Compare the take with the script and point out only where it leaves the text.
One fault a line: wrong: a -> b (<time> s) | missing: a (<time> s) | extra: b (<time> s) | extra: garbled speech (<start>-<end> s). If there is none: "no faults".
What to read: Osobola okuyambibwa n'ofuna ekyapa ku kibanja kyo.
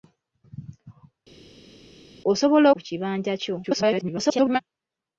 missing: okuyambibwa n'ofuna ekyapa (2.7 s)
extra: garbled speech (3.6-4.6 s)